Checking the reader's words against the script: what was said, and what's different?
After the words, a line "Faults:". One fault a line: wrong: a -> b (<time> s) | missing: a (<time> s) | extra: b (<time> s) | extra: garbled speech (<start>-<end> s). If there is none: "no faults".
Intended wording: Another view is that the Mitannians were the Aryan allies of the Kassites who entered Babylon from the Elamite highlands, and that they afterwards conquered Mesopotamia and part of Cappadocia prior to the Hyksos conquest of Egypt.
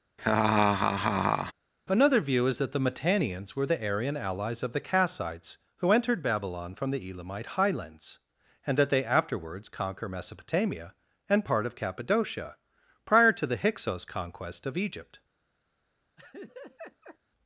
Another view is that the Mitannians were the Aryan allies of the Kassites who entered Babylon from the Elamite highlands, and that they afterwards conquer Mesopotamia and part of Cappadocia prior to the Hyksos conquest of Egypt.
Faults:
wrong: conquered -> conquer (9.7 s)